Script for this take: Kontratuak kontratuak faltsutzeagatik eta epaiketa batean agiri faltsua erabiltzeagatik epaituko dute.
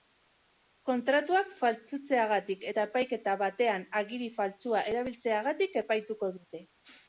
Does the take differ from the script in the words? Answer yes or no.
yes